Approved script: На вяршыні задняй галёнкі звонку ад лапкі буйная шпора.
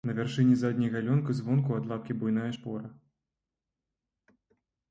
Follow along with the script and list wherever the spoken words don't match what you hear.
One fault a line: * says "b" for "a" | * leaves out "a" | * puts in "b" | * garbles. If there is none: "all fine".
all fine